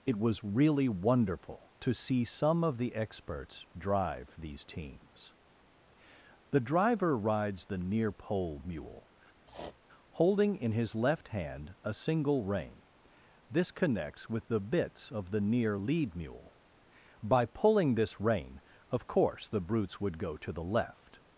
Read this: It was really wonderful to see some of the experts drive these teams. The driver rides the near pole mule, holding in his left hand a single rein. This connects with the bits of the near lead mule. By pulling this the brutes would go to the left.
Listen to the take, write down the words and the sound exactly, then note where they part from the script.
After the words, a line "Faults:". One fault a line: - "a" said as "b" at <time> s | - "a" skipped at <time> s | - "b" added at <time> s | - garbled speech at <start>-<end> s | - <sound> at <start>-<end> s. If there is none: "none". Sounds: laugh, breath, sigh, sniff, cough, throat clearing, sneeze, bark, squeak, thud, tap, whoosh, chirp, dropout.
It was really wonderful to see some of the experts drive these teams. The driver rides the near pole mule, holding in his left hand a single rein. This connects with the bits of the near lead mule. By pulling this rein, of course the brutes would go to the left.
Faults:
- sniff at 9.5-9.8 s
- "rein of course" added at 18.2 s